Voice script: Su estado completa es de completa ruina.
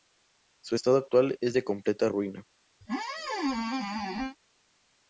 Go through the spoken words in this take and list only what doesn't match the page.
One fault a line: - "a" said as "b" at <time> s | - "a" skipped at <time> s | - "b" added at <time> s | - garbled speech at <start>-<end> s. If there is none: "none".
- "completa" said as "actual" at 1.0 s